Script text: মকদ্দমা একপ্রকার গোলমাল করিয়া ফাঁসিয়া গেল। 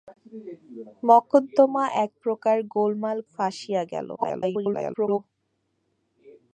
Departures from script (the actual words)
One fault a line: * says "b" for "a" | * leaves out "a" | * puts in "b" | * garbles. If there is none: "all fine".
* leaves out "করিয়া"
* garbles